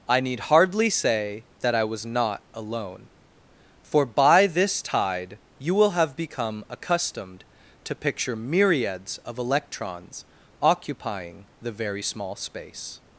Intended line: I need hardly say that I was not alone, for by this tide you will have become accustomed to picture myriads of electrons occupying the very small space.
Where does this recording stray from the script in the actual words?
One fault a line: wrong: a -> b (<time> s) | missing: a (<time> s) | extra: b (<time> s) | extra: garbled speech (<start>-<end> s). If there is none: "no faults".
no faults